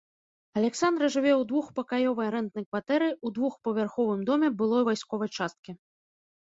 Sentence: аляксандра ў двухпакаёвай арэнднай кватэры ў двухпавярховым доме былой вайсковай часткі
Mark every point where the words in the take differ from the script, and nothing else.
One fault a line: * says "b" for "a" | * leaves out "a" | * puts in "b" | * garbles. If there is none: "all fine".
* puts in "жыве"